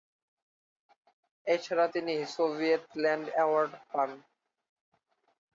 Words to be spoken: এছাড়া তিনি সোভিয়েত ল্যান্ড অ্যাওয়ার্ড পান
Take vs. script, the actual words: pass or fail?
pass